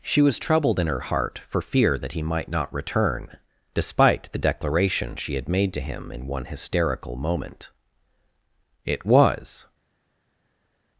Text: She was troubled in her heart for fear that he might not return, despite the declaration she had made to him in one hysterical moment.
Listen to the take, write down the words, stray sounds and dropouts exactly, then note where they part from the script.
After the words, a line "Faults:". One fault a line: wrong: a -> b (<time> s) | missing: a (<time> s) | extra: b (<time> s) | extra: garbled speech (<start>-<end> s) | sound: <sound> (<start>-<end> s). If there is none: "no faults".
She was troubled in her heart for fear that he might not return, despite the declaration she had made to him in one hysterical moment. It was
Faults:
extra: It was (8.8 s)